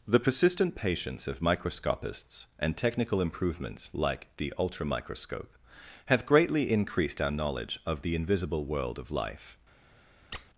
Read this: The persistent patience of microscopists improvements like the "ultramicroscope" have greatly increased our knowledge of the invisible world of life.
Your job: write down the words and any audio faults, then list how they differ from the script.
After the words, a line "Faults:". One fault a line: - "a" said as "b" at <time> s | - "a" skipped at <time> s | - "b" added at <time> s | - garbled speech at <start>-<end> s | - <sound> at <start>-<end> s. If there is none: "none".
The persistent patience of microscopists and technical improvements like the "ultramicroscope" have greatly increased our knowledge of the invisible world of life.
Faults:
- "and technical" added at 2.6 s
- squeak at 10.3-10.5 s